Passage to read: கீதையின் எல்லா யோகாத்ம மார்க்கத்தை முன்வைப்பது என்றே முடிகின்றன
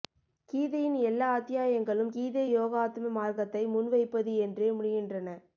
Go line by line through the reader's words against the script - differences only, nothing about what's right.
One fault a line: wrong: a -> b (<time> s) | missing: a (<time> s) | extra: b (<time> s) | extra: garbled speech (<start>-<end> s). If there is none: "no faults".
extra: அத்தியாயங்களும் கீதை (1.3 s)